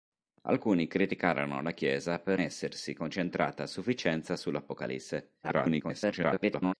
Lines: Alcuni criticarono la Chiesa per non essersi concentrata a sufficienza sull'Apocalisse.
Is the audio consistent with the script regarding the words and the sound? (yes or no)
no